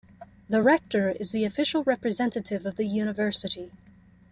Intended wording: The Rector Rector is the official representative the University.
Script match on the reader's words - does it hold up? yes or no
no